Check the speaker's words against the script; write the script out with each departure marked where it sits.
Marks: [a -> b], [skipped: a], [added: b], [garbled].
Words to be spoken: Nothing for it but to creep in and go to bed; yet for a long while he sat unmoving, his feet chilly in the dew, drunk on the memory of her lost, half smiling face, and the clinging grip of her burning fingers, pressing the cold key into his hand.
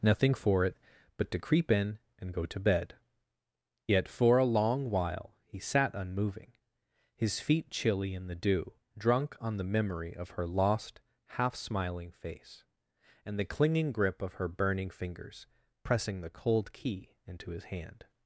Nothing for it but to creep in and go to bed; yet for a long while he sat unmoving, his feet chilly in the dew, drunk on the memory of her lost, half smiling face, and the clinging grip of her burning fingers, pressing the cold key into his hand.